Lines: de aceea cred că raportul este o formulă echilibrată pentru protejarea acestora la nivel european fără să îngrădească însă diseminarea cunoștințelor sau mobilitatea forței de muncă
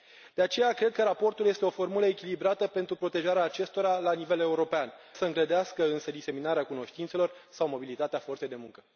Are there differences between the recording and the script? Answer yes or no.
yes